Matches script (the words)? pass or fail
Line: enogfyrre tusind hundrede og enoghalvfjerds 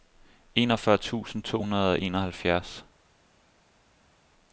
fail